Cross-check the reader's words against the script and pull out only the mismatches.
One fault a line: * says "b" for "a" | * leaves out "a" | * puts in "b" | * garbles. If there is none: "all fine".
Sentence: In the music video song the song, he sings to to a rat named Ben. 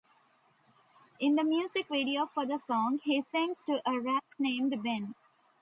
* says "for" for "song"
* leaves out "to"